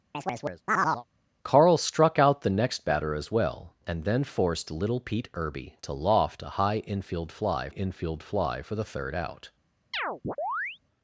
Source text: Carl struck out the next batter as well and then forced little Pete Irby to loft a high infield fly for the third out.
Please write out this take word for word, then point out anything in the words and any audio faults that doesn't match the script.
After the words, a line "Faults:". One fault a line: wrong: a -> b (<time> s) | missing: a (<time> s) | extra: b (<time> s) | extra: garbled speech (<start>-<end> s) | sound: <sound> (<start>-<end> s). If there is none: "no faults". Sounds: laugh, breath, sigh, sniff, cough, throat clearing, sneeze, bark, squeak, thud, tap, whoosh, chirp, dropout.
Carl struck out the next batter as well and then forced little Pete Irby to loft a high infield fly infield fly for the third out.
Faults:
sound: chirp (0.1-1.0 s)
extra: infield fly (7.7 s)
sound: chirp (9.9-10.8 s)